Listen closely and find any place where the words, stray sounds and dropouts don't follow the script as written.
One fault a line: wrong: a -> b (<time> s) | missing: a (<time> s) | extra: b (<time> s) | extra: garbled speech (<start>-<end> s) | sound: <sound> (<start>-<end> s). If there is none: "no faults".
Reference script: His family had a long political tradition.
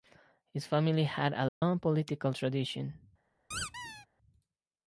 sound: dropout (1.5-1.6 s)
sound: squeak (3.5-4.1 s)